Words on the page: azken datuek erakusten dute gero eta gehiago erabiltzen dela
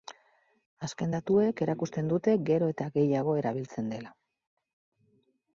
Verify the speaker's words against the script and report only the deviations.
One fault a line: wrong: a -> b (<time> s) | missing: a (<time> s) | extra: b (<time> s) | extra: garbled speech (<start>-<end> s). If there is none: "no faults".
no faults